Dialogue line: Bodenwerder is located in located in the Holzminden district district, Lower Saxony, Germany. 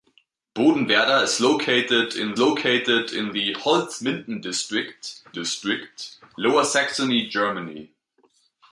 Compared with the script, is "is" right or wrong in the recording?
right